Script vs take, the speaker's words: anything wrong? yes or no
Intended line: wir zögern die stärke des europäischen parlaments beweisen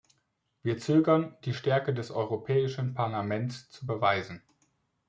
yes